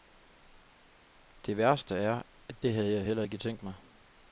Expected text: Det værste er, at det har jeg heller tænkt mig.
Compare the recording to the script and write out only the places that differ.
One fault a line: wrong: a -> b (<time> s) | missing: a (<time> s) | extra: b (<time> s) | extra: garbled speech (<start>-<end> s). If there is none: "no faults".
wrong: har -> havde (2.7 s)
extra: ikke (3.2 s)